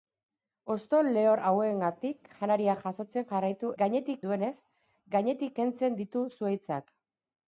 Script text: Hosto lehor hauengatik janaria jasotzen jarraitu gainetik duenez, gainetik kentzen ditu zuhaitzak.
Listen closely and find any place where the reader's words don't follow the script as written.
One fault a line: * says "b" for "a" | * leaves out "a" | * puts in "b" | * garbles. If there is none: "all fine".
all fine